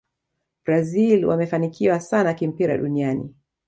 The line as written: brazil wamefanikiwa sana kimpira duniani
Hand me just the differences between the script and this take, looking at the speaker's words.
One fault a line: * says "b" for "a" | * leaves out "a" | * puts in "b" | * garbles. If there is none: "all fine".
all fine